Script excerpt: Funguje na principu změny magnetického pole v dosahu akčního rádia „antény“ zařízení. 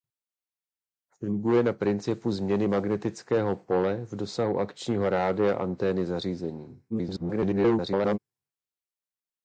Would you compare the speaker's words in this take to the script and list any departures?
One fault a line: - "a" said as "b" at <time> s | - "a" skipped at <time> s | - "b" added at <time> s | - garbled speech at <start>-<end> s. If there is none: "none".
- garbled speech at 6.9-8.2 s